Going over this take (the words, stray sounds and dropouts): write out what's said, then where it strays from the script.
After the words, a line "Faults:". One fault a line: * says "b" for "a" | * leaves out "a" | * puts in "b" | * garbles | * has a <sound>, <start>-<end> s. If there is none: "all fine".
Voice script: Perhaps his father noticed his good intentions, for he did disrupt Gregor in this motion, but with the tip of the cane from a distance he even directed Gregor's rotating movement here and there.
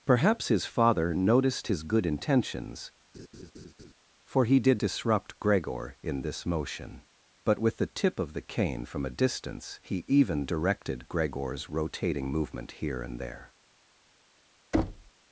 Perhaps his father noticed his good intentions, for he did disrupt Gregor in this motion, but with the tip of the cane from a distance he even directed Gregor's rotating movement here and there.
Faults:
* has a laugh, 3.1-3.9 s
* has a thud, 14.7-15.1 s